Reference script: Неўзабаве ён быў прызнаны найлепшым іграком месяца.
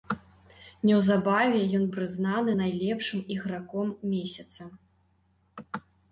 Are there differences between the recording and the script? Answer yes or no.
yes